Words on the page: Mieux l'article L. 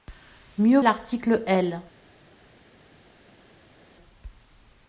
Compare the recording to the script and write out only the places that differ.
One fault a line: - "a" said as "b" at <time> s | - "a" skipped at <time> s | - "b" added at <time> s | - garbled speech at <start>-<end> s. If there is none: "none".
none